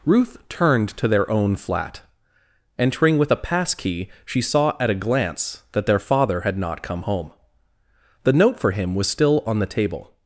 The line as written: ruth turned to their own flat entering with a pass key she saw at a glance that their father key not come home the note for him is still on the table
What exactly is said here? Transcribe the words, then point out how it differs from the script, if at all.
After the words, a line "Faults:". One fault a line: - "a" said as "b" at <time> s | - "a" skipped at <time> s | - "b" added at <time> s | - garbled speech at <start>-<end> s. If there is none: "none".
ruth turned to their own flat entering with a pass key she saw at a glance that their father had not come home the note for him was still on the table
Faults:
- "key" said as "had" at 6.4 s
- "is" said as "was" at 8.9 s